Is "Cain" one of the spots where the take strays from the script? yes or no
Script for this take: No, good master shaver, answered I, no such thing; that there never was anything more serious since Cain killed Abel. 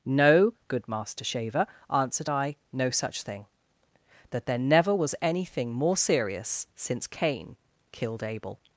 no